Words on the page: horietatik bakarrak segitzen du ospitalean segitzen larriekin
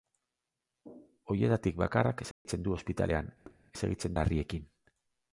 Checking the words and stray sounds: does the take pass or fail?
fail